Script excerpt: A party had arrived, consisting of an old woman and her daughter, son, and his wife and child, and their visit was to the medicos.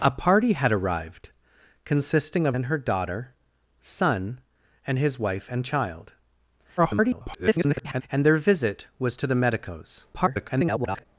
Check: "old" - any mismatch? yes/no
yes